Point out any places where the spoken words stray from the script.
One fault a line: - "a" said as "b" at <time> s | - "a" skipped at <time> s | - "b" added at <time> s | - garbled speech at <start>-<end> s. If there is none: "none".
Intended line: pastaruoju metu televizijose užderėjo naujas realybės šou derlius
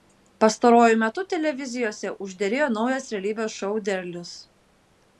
none